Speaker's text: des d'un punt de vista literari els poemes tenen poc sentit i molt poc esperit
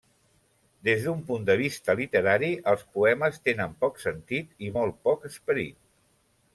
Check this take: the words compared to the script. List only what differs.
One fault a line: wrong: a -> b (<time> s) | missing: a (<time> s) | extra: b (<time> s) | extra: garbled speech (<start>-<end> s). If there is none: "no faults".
no faults